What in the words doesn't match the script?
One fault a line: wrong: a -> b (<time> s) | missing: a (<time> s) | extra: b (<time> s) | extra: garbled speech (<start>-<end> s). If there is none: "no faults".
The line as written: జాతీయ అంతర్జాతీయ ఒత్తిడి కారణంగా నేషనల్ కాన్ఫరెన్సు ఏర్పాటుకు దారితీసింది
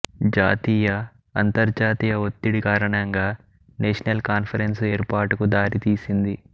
no faults